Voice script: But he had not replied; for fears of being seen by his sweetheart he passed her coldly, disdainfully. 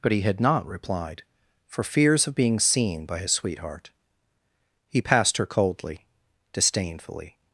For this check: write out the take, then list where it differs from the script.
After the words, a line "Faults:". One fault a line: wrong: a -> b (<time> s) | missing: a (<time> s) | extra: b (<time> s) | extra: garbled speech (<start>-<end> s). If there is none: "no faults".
But he had not replied; for fears of being seen by his sweetheart he passed her coldly, disdainfully.
Faults:
no faults